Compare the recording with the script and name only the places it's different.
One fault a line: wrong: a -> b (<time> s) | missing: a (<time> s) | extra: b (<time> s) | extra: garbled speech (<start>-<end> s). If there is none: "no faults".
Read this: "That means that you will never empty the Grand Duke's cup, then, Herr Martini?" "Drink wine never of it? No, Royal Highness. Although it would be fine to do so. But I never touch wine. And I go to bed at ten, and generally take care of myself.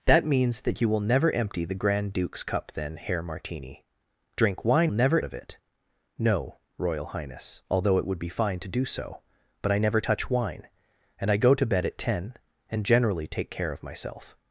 no faults